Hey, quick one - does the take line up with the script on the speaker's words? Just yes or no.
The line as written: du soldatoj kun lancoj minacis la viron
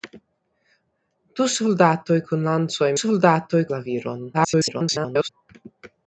no